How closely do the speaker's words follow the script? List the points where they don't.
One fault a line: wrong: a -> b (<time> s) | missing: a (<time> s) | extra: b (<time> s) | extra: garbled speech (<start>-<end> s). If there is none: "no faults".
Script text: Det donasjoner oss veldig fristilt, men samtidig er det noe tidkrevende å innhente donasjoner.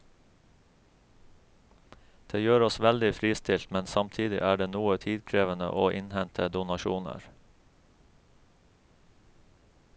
wrong: donasjoner -> gjør (2.4 s)